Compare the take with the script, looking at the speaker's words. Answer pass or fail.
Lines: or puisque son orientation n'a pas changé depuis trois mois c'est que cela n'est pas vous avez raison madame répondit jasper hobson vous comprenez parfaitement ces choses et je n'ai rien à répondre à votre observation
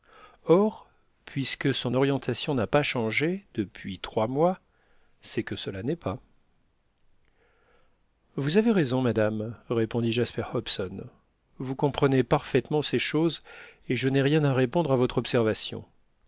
pass